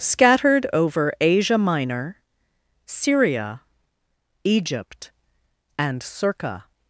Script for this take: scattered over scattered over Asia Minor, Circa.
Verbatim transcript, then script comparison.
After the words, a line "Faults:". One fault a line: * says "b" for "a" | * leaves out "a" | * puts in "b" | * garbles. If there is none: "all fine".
scattered over Asia Minor, Syria, Egypt, and circa.
Faults:
* says "Asia Minor Syria Egypt and" for "scattered over Asia Minor"